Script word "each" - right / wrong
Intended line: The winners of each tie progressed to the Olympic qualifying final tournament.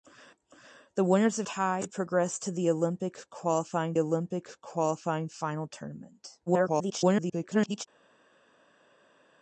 wrong